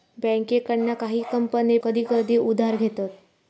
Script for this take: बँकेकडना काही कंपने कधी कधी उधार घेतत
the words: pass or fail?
pass